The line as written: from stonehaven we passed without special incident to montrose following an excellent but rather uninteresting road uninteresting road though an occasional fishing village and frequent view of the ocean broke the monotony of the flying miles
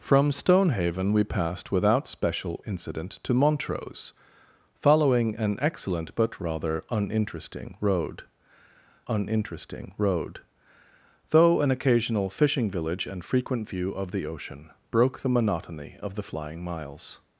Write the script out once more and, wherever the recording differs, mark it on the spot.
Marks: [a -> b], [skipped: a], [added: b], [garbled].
from stonehaven we passed without special incident to montrose following an excellent but rather uninteresting road uninteresting road though an occasional fishing village and frequent view of the ocean broke the monotony of the flying miles